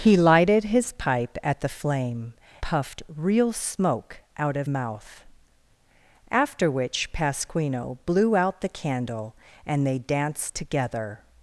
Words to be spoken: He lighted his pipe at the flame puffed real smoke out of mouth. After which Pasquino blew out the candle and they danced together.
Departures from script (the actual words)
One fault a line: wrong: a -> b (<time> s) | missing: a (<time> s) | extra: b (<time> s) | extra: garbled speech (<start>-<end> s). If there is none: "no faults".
no faults